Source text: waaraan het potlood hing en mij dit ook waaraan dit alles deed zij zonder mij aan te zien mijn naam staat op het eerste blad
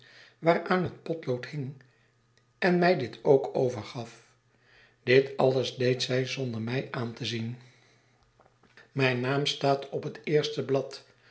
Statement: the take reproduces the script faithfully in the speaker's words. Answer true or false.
false